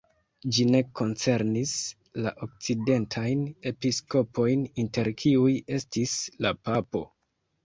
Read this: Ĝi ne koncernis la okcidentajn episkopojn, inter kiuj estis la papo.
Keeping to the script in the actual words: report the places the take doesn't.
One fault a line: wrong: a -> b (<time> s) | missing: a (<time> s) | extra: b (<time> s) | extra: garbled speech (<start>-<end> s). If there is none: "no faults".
no faults